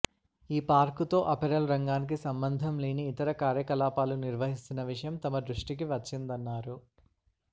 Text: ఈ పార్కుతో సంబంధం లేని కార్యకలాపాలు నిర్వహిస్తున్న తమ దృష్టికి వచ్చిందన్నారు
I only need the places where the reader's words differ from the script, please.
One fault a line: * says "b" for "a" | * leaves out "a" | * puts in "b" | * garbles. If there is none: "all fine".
* puts in "అపెరల్ రంగానికి"
* puts in "ఇతర"
* puts in "విషయం"